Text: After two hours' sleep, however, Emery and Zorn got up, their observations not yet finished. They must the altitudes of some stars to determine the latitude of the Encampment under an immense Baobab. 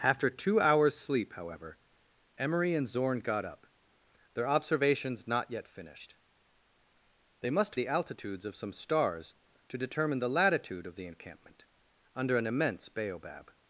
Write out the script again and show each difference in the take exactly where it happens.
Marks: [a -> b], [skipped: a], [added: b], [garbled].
After two hours' sleep, however, Emery and Zorn got up, their observations not yet finished. They must the altitudes of some stars to determine the latitude of the Encampment under an immense Baobab.